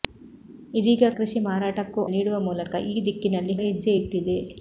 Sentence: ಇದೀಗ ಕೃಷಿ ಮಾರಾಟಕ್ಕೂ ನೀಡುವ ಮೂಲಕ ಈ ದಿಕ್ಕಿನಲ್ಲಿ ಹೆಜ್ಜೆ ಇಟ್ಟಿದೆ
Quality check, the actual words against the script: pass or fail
pass